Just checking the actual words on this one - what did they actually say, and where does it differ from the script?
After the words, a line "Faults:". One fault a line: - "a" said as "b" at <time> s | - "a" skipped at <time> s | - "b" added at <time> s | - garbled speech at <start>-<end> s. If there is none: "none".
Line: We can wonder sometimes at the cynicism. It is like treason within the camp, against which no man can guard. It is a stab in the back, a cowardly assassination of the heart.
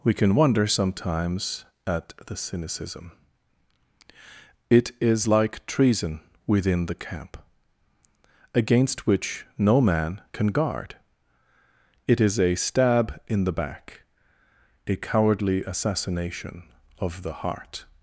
We can wonder sometimes at the cynicism. It is like treason within the camp, against which no man can guard. It is a stab in the back, a cowardly assassination of the heart.
Faults:
none